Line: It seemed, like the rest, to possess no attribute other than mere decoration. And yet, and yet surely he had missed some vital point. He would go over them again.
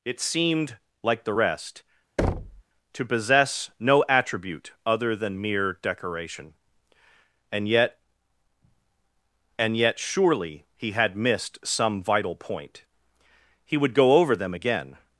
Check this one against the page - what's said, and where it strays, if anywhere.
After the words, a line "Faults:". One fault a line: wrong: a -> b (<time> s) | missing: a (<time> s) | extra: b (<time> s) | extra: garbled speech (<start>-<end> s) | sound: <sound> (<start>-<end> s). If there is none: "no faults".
It seemed, like the rest, to possess no attribute other than mere decoration. And yet, and yet surely he had missed some vital point. He would go over them again.
Faults:
sound: thud (2.2-2.6 s)